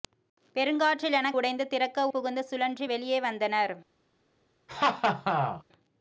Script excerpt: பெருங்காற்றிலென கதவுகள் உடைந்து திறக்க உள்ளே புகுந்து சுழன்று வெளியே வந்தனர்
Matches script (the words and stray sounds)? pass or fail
fail